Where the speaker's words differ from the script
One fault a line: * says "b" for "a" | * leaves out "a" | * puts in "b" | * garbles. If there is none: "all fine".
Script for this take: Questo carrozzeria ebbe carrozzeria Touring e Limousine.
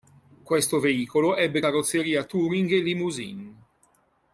* says "veicolo" for "carrozzeria"